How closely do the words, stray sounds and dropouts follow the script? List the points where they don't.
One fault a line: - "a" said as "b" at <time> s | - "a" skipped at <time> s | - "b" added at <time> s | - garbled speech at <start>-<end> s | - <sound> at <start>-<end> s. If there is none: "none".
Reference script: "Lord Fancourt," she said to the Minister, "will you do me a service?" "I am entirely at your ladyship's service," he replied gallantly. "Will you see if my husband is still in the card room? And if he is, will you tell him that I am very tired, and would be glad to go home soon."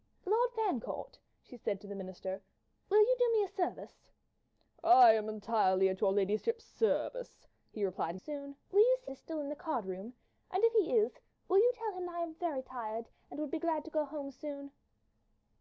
- "gallantly" said as "soon" at 8.2 s
- "if my husband" skipped at 9.1 s
- "that" skipped at 12.0 s